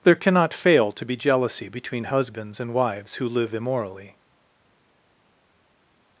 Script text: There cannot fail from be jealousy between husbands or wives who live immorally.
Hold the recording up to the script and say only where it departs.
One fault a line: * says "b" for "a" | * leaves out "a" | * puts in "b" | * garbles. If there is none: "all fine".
* says "to" for "from"
* says "and" for "or"